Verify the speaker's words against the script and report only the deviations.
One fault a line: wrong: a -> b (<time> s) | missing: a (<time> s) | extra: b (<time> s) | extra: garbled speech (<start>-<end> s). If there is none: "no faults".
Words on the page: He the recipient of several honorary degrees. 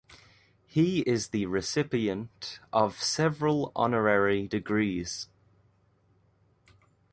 extra: is (1.0 s)